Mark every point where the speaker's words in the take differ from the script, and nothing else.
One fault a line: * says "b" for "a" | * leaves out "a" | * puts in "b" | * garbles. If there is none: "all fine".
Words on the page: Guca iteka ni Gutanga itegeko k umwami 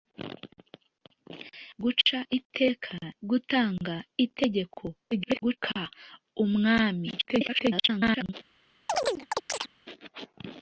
* leaves out "ni"
* garbles
* garbles